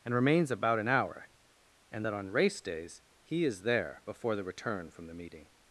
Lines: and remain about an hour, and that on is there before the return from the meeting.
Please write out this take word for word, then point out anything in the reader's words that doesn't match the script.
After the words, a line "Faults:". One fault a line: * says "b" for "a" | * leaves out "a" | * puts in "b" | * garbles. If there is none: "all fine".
and remains about an hour, and that on race days he is there before the return from the meeting.
Faults:
* says "remains" for "remain"
* puts in "race days he"